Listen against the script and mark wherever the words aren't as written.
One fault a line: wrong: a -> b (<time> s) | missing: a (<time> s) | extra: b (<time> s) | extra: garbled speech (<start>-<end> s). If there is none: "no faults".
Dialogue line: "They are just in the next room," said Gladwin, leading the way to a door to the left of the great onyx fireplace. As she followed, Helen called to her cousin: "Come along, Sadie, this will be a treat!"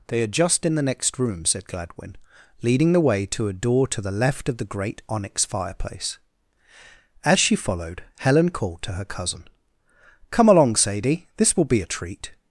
no faults